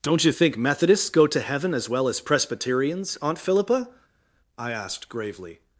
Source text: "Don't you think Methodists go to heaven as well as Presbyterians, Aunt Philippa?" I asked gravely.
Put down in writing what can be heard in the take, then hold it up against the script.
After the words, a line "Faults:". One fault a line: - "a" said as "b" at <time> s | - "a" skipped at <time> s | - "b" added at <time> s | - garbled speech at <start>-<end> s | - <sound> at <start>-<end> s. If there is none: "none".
"Don't you think Methodists go to heaven as well as Presbyterians, Aunt Philippa?" I asked gravely.
Faults:
none